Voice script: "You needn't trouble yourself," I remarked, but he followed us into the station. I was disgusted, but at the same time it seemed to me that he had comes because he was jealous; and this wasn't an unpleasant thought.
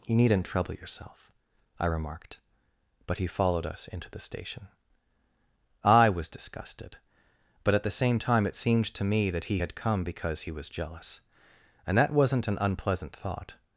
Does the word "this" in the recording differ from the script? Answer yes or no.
yes